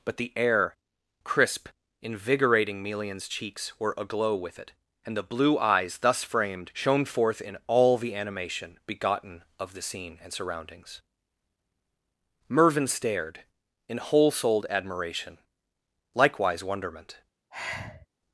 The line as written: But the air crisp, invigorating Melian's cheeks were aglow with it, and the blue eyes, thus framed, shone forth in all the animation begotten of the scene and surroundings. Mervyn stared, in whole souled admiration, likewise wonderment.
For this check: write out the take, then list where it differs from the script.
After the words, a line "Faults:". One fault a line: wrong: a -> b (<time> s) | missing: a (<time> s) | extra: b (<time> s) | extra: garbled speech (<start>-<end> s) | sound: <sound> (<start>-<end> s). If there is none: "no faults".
But the air crisp, invigorating Melian's cheeks were aglow with it, and the blue eyes, thus framed, shone forth in all the animation begotten of the scene and surroundings. Mervyn stared, in whole souled admiration, likewise wonderment.
Faults:
sound: sigh (17.5-18.1 s)